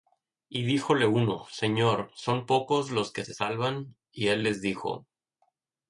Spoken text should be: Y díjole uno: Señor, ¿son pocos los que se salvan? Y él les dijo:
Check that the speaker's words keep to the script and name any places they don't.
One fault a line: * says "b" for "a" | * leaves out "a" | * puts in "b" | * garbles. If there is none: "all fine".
all fine